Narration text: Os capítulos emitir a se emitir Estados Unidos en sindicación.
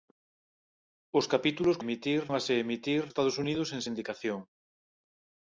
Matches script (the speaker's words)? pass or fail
pass